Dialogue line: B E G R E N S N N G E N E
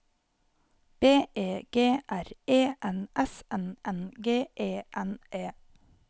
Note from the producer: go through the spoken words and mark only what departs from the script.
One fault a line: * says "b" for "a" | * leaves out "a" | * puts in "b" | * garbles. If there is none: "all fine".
all fine